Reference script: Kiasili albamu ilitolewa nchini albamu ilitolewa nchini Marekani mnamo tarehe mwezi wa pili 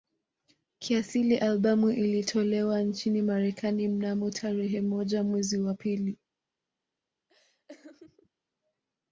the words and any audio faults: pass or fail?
fail